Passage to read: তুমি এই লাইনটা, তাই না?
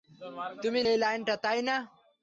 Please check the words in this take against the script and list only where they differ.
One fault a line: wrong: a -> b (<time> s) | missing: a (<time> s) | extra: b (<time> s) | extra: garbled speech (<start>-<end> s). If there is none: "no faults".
no faults